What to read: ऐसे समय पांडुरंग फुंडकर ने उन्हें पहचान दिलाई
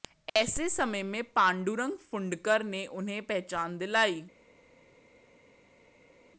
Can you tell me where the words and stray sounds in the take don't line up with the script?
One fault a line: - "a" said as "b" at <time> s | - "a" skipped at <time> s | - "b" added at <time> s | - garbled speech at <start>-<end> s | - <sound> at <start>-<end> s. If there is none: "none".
- "में" added at 1.0 s